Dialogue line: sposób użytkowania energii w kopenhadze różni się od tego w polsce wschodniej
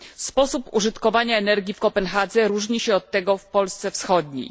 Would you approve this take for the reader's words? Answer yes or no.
yes